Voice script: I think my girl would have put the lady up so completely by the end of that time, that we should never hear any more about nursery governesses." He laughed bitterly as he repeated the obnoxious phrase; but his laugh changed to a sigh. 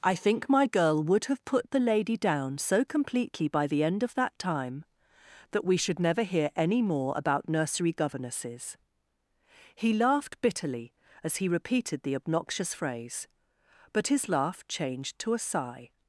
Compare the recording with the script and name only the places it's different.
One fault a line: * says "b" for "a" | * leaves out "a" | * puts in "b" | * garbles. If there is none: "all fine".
* says "down" for "up"